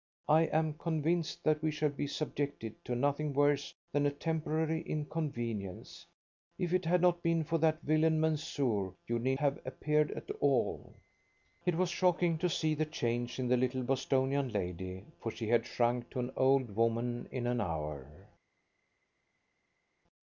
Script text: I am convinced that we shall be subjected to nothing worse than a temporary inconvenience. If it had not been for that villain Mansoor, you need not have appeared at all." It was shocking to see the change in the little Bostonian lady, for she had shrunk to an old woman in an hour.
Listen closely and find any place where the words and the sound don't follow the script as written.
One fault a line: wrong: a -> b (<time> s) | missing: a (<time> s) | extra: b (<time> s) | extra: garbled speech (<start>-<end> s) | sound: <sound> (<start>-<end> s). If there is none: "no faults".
missing: not (9.3 s)